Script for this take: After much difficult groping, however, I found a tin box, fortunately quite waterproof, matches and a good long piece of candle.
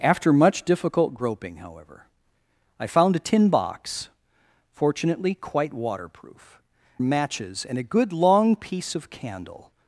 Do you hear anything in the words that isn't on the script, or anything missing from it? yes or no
no